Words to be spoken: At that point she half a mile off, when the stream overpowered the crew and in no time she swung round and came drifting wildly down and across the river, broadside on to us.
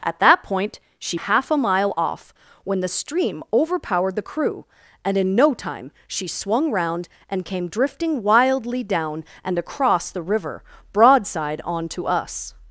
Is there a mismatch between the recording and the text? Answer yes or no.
no